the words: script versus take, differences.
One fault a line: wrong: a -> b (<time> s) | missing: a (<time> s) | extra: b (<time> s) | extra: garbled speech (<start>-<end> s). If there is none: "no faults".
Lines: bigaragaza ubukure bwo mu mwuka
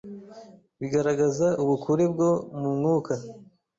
no faults